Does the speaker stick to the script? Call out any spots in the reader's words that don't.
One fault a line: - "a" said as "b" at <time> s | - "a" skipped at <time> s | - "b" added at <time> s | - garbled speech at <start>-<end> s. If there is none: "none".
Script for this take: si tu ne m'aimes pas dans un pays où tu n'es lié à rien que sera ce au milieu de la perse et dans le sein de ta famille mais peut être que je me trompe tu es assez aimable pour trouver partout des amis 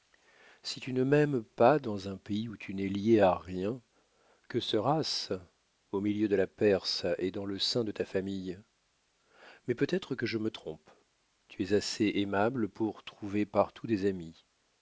none